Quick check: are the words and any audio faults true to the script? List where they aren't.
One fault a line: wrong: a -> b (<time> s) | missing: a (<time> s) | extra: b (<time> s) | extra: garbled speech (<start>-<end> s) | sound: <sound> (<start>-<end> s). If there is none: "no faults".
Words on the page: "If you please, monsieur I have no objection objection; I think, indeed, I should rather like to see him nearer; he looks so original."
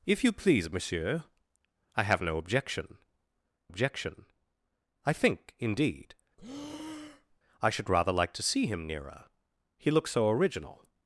sound: breath (6.4-7.4 s)